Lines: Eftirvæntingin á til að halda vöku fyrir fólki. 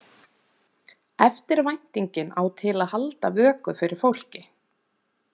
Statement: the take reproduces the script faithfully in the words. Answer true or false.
true